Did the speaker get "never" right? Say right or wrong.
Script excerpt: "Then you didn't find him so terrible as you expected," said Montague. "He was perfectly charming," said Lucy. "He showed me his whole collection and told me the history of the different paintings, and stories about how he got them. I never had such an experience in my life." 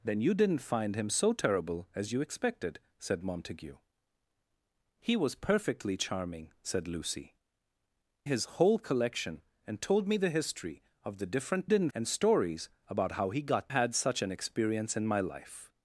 wrong